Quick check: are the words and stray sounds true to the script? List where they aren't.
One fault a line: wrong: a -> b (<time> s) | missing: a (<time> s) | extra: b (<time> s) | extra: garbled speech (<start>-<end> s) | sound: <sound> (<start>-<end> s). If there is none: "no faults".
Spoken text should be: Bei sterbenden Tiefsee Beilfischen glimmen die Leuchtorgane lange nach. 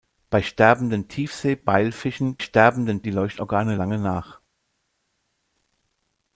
wrong: glimmen -> sterbenden (2.4 s)